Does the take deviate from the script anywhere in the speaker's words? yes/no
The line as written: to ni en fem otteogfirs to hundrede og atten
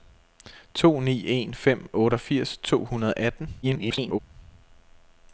yes